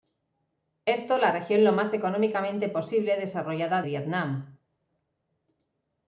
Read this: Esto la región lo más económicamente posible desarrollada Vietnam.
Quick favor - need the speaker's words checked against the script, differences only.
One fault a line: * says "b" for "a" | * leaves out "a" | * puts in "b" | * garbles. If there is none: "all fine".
all fine